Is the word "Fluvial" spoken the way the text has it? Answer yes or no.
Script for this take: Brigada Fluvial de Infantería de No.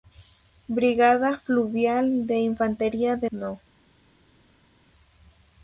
yes